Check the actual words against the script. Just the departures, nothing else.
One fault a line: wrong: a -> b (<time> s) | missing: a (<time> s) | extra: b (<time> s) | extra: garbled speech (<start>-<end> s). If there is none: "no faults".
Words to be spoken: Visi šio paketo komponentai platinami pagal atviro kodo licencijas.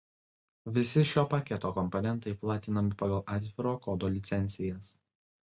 no faults